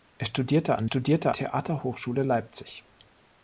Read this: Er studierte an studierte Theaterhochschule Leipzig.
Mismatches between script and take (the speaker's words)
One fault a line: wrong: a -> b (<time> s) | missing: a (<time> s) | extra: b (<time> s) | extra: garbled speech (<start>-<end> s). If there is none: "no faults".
no faults